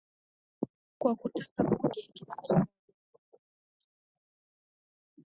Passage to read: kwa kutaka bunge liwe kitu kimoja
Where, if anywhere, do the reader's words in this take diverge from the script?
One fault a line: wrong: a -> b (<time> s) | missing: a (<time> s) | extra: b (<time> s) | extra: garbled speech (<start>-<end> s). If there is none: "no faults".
missing: liwe (2.0 s)